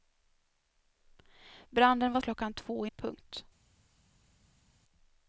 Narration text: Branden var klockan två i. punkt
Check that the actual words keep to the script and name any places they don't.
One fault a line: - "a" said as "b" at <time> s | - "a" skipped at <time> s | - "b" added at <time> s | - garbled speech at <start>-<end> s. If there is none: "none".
none